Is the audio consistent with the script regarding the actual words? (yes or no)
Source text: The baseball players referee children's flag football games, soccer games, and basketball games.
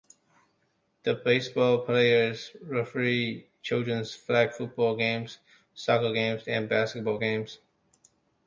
yes